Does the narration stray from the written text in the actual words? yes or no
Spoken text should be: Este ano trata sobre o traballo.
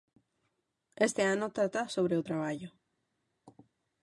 no